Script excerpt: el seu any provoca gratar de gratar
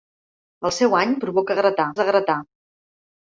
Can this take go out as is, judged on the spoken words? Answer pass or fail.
pass